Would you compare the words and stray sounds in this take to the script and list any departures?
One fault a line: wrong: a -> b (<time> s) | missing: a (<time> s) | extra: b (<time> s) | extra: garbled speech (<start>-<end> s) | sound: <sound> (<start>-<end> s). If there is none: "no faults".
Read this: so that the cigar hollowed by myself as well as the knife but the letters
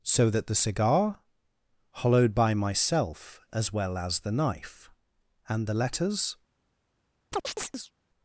wrong: but -> and (5.5 s)
sound: chirp (7.3-7.9 s)